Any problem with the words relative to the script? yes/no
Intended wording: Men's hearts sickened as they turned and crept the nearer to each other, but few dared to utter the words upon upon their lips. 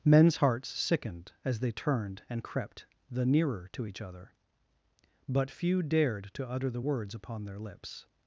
yes